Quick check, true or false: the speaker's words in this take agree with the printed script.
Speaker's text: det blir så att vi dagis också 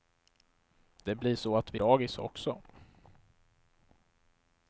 true